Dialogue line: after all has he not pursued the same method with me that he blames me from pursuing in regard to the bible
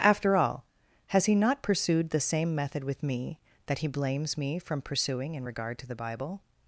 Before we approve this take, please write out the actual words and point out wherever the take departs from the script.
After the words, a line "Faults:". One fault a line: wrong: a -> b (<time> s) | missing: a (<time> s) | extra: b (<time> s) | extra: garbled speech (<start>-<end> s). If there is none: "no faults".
after all has he not pursued the same method with me that he blames me from pursuing in regard to the bible
Faults:
no faults